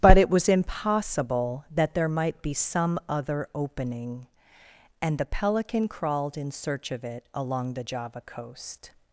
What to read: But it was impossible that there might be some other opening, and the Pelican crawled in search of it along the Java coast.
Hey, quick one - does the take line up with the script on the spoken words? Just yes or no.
yes